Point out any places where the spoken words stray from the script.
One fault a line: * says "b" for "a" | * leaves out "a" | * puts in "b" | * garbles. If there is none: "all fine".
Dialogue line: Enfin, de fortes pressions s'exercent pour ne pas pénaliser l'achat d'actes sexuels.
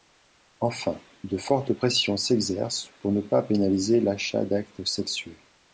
all fine